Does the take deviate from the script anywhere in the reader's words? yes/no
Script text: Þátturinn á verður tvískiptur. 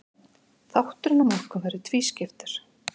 yes